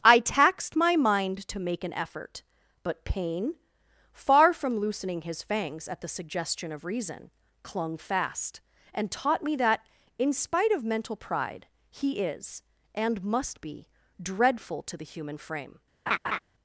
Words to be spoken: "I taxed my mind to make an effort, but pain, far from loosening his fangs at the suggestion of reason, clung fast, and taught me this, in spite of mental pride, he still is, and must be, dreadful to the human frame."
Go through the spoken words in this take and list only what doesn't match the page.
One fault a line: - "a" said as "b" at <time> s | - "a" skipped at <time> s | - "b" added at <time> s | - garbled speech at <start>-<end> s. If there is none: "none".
- "this" said as "that" at 9.6 s
- "still" skipped at 12.2 s